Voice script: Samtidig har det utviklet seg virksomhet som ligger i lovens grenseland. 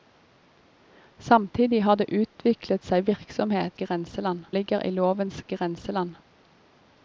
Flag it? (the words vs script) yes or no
yes